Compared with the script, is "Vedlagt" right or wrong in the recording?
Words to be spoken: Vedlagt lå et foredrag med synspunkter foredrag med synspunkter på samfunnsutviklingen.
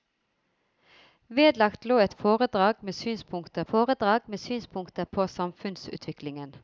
right